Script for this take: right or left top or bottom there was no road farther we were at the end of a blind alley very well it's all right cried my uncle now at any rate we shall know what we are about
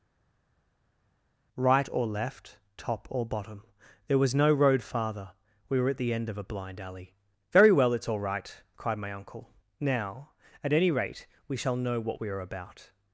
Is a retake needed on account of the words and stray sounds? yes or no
no